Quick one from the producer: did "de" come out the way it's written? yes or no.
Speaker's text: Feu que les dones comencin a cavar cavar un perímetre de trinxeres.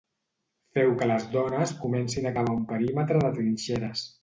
yes